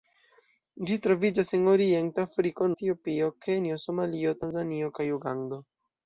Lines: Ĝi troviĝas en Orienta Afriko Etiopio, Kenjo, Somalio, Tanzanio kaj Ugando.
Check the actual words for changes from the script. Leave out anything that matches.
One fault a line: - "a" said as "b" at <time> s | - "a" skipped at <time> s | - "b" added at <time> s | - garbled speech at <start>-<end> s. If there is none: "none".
none